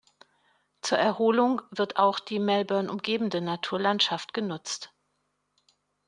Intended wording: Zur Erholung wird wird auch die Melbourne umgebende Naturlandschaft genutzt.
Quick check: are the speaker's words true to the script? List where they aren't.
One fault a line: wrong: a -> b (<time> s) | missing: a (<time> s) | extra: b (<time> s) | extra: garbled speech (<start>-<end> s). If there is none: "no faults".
missing: wird (2.0 s)